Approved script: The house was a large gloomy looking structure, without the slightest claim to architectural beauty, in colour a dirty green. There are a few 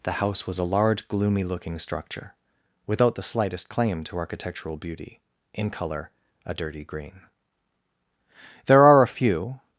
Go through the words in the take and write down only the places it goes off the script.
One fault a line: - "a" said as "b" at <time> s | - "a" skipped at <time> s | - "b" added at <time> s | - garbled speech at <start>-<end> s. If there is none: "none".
none